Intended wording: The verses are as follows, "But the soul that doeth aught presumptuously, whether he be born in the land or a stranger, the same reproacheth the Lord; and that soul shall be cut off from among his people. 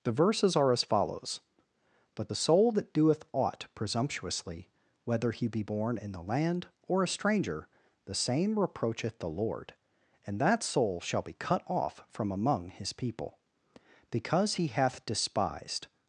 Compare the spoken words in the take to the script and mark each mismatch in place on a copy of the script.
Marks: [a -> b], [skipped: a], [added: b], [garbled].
The verses are as follows, "But the soul that doeth aught presumptuously, whether he be born in the land or a stranger, the same reproacheth the Lord; and that soul shall be cut off from among his people. [added: Because he hath despised]